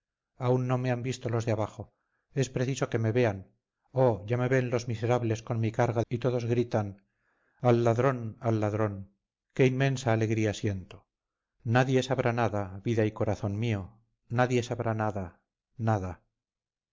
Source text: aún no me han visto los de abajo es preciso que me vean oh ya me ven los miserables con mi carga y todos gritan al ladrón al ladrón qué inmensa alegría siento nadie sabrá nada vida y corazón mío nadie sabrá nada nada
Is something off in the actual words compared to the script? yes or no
no